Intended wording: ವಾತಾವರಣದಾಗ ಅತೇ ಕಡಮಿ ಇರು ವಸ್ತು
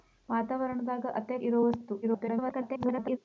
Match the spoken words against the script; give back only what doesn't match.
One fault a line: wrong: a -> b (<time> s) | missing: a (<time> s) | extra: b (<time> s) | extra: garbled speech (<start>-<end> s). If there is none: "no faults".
missing: ಕಡಮಿ (1.4 s)
extra: garbled speech (2.0-3.2 s)